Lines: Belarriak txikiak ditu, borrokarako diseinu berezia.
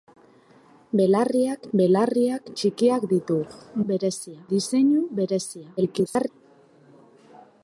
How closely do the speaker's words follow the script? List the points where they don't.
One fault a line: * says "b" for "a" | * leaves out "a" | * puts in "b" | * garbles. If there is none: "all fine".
* puts in "belarriak"
* says "berezia" for "borrokarako"
* garbles